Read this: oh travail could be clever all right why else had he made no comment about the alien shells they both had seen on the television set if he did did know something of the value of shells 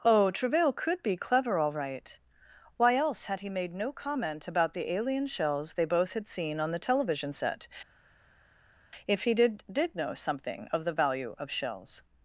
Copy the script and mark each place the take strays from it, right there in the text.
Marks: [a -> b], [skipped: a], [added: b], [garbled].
oh travail could be clever all right why else had he made no comment about the alien shells they both had seen on the television set if he did did know something of the value of shells